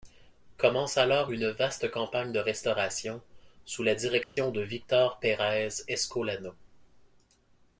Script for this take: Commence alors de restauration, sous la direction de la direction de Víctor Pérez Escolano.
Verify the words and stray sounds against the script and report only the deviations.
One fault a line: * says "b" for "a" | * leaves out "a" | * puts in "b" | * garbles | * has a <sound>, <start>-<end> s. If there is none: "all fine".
* puts in "une vaste campagne"
* has a dropout, 4.2-4.4 s
* leaves out "la direction de"